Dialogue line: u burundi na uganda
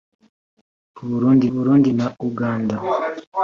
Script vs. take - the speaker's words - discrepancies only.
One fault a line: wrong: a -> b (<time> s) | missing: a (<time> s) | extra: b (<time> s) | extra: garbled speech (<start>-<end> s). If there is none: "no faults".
extra: burundi (1.5 s)